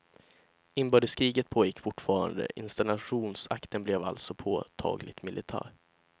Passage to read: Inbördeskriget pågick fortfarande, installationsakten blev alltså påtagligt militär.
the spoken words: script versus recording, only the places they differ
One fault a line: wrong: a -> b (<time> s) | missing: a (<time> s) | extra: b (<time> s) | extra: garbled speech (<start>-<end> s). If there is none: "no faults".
no faults